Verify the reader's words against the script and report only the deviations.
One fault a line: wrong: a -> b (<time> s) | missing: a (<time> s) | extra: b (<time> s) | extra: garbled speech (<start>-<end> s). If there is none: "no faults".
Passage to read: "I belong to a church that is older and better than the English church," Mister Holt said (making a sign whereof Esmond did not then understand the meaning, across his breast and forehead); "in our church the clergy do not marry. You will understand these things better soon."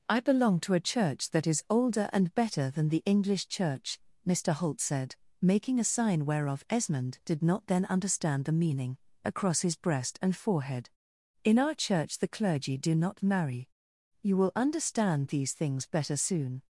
no faults